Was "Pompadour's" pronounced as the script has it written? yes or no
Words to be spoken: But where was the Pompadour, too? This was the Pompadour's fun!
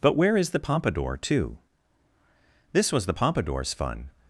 yes